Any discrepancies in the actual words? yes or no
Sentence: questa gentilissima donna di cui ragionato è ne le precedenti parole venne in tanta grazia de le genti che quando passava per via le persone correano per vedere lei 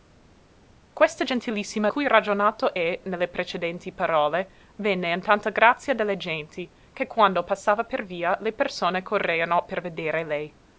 yes